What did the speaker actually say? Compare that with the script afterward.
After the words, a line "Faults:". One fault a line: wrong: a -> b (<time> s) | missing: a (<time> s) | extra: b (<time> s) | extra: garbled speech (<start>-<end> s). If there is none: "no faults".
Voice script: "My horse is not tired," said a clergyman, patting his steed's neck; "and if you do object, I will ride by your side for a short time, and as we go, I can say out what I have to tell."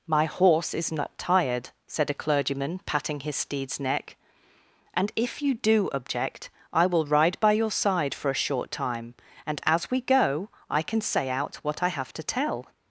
"My horse is not tired," said a clergyman, patting his steed's neck; "and if you do object, I will ride by your side for a short time, and as we go, I can say out what I have to tell."
Faults:
no faults